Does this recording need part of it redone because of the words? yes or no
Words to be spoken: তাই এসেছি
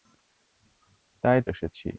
no